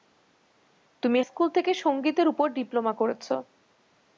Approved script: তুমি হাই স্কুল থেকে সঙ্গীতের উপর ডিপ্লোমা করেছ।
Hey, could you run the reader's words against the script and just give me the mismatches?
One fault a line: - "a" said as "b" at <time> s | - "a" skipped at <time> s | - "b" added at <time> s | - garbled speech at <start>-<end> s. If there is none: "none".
- "হাই" skipped at 1.2 s